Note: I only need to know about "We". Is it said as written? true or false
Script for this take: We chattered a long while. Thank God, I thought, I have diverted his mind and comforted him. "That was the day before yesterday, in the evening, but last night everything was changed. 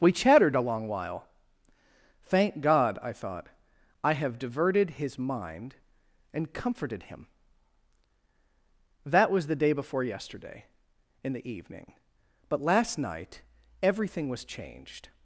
true